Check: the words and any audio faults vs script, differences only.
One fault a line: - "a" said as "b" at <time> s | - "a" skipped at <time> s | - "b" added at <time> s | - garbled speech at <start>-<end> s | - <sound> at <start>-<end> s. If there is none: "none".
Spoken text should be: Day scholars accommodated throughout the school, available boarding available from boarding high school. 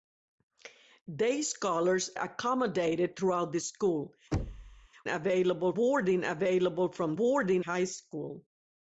- thud at 4.3-4.9 s